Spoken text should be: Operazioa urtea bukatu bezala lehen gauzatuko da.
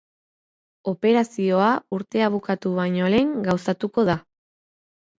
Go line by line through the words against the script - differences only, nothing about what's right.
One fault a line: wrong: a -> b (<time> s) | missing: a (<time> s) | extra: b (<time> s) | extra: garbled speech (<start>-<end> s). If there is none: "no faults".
wrong: bezala -> baino (2.8 s)